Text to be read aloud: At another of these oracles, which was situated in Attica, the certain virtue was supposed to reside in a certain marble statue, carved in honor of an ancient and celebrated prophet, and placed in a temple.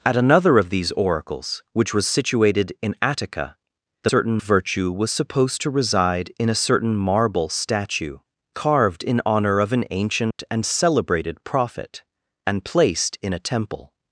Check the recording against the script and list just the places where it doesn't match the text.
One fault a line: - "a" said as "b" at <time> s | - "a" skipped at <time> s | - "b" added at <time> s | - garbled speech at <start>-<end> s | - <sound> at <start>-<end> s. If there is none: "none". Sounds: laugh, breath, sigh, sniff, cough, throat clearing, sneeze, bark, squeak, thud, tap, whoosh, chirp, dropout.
- dropout at 10.3-10.4 s